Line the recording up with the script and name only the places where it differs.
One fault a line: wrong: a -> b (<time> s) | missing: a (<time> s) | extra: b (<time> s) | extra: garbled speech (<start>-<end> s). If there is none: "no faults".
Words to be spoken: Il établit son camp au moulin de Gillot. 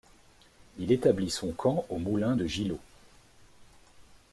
no faults